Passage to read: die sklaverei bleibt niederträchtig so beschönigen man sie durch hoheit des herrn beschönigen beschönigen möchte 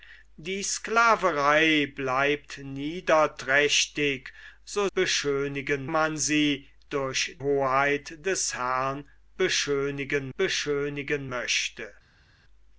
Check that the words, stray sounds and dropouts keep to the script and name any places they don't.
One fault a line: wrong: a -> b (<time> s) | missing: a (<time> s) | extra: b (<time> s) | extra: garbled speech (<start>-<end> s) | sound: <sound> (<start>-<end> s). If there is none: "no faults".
no faults